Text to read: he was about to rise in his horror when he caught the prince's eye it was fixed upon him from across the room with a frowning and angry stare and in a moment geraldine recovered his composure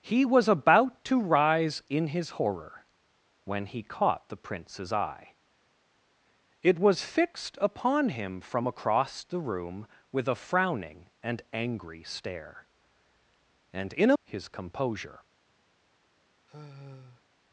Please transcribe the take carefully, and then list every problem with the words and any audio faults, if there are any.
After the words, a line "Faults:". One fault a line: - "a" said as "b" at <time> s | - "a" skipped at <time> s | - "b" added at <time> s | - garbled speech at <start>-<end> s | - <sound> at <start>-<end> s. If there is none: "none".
he was about to rise in his horror when he caught the prince's eye it was fixed upon him from across the room with a frowning and angry stare and in a his composure
Faults:
- "moment geraldine recovered" skipped at 14.2 s
- sigh at 16.5-17.2 s